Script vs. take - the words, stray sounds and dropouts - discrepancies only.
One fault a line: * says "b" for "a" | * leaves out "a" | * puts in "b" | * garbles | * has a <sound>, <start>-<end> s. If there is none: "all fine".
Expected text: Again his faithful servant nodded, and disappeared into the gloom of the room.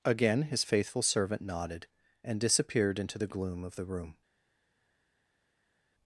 all fine